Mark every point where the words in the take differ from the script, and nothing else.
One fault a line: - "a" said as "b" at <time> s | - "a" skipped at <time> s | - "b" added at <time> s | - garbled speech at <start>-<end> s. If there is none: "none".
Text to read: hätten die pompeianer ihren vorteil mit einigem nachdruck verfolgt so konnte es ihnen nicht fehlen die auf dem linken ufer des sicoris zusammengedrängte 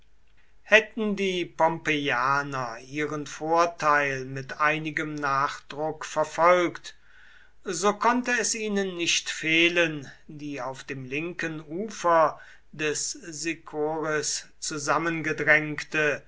none